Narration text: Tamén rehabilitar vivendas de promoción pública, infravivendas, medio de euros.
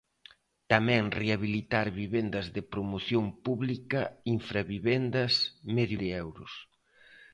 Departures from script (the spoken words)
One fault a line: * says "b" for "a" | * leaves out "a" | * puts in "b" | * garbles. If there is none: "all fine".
all fine